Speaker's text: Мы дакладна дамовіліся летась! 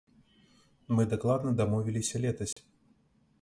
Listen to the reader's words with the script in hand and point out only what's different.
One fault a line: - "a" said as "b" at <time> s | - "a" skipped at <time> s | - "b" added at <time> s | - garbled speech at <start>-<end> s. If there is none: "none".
none